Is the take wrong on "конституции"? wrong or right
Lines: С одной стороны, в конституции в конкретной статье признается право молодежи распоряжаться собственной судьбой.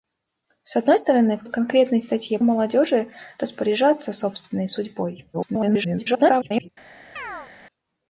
wrong